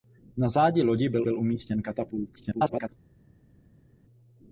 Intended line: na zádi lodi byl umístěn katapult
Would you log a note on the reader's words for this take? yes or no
yes